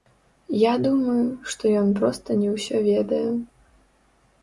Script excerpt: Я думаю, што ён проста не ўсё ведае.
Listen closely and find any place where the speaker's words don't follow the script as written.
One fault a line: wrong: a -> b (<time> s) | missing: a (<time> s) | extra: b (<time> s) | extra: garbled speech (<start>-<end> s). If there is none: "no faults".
no faults